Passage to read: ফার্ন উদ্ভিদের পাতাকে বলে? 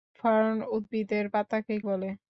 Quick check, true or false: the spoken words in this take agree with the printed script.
true